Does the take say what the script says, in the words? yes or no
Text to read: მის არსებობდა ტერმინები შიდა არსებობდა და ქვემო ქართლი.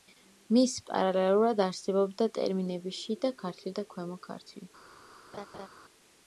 no